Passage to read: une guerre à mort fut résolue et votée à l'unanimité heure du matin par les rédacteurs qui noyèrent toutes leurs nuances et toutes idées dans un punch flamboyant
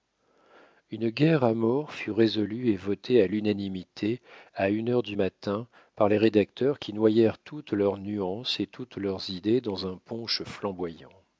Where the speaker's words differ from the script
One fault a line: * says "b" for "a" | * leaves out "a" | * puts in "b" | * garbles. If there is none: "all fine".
* puts in "à une"
* puts in "leurs"